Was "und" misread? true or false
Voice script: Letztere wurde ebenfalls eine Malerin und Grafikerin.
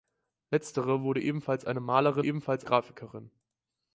true